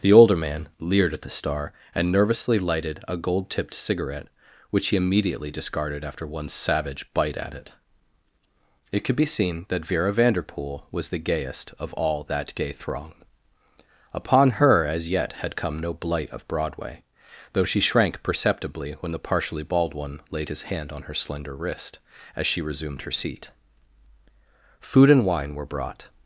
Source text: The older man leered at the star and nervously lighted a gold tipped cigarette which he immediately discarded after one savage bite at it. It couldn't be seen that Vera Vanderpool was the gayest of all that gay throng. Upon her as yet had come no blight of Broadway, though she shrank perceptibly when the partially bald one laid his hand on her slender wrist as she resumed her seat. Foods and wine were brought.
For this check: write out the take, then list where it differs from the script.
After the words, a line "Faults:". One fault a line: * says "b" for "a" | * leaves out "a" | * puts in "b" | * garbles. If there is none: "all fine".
The older man leered at the star and nervously lighted a gold tipped cigarette which he immediately discarded after one savage bite at it. It could be seen that Vera Vanderpool was the gayest of all that gay throng. Upon her as yet had come no blight of Broadway, though she shrank perceptibly when the partially bald one laid his hand on her slender wrist as she resumed her seat. Food and wine were brought.
Faults:
* says "could" for "couldn't"
* says "Food" for "Foods"